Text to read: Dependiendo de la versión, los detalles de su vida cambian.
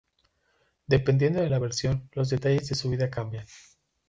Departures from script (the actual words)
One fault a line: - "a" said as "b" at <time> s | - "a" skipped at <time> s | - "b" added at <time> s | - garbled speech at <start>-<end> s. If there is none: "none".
none